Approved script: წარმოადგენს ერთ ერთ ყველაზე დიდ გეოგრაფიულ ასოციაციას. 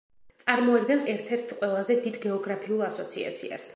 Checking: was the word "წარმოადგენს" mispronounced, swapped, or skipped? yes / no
no